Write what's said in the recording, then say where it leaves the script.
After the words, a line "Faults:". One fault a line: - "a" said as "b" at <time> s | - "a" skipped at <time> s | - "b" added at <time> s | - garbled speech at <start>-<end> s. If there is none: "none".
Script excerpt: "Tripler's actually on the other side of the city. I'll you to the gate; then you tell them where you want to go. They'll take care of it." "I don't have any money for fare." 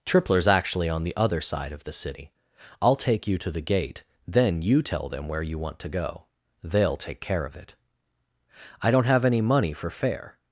"Tripler's actually on the other side of the city. I'll take you to the gate; then you tell them where you want to go. They'll take care of it." "I don't have any money for fare."
Faults:
- "take" added at 3.0 s